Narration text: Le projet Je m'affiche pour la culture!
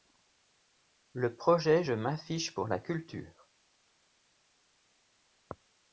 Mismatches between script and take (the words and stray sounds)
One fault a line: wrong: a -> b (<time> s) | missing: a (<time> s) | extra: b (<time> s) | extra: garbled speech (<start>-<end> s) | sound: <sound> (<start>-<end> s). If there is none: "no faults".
no faults